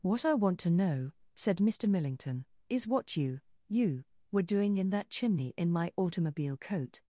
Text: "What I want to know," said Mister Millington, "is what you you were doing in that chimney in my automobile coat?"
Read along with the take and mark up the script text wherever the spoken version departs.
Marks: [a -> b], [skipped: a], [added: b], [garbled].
"What I want to know," said Mister Millington, "is what you you were doing in that chimney in my automobile coat?"